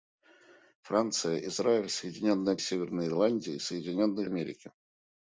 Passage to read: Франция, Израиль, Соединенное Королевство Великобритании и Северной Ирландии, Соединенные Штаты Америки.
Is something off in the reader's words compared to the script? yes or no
yes